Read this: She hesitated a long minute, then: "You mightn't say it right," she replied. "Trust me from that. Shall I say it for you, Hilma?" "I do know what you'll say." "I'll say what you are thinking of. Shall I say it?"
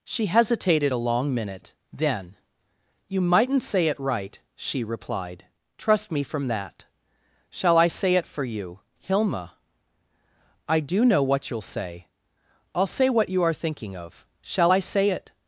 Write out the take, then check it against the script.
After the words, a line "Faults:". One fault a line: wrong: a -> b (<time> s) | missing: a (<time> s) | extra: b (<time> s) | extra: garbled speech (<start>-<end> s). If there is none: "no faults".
She hesitated a long minute, then: "You mightn't say it right," she replied. "Trust me from that. Shall I say it for you, Hilma?" "I do know what you'll say." "I'll say what you are thinking of. Shall I say it?"
Faults:
no faults